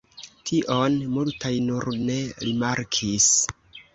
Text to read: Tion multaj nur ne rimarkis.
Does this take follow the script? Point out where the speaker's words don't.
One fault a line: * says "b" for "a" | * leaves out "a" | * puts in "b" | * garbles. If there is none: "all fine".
all fine